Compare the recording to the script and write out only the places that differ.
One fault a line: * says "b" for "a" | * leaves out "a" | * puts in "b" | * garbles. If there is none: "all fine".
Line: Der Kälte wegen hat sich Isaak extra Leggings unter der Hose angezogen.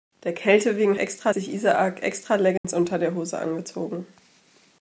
* says "extra" for "hat"